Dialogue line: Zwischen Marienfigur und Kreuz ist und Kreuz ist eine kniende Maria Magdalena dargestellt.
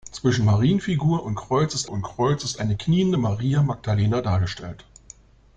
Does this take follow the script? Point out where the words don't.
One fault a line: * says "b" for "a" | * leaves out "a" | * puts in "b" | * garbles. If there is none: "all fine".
all fine